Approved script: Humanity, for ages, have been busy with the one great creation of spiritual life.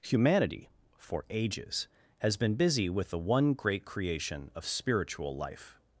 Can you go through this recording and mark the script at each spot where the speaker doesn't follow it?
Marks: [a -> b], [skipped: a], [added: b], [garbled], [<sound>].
Humanity, for ages, [have -> has] been busy with the one great creation of spiritual life.